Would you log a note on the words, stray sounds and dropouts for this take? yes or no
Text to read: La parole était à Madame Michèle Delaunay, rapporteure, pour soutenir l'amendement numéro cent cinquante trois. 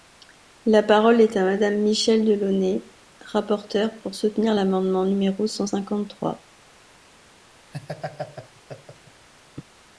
yes